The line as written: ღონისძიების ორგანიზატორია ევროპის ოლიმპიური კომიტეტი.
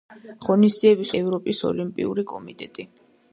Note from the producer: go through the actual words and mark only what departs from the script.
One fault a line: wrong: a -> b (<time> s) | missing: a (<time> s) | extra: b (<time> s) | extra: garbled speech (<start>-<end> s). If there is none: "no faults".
missing: ორგანიზატორია (1.1 s)